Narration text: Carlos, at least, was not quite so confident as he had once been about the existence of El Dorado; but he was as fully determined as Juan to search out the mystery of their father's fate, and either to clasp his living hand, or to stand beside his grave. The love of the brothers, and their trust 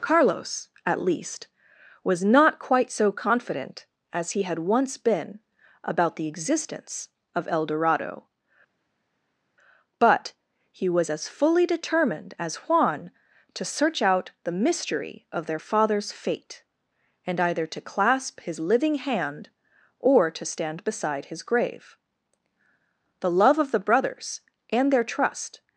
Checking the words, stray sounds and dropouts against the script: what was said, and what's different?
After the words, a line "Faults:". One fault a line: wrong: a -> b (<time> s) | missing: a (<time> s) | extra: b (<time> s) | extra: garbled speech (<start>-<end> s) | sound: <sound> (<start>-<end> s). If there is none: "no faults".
Carlos, at least, was not quite so confident as he had once been about the existence of El Dorado; but he was as fully determined as Juan to search out the mystery of their father's fate, and either to clasp his living hand, or to stand beside his grave. The love of the brothers, and their trust
Faults:
no faults